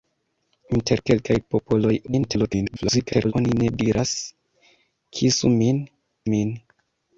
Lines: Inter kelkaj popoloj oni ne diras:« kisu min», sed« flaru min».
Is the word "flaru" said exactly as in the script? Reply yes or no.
no